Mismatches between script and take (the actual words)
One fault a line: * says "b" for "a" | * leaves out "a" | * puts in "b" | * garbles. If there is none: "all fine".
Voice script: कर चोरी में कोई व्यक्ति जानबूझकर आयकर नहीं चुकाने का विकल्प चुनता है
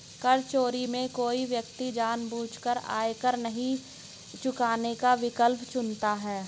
all fine